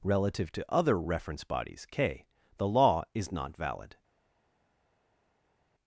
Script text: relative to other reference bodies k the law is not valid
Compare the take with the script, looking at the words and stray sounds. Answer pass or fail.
pass